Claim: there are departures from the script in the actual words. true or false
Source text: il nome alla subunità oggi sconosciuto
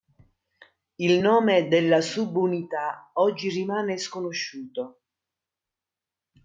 true